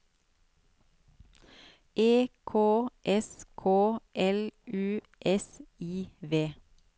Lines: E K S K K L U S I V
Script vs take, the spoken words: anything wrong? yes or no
yes